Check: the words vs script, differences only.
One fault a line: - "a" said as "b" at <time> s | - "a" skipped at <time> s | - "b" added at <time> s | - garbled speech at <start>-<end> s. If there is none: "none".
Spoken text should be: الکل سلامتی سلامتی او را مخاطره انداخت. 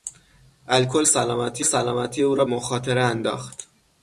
none